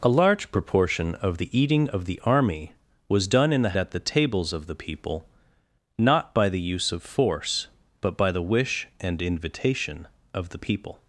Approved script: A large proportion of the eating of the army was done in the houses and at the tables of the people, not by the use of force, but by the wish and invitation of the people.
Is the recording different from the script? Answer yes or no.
yes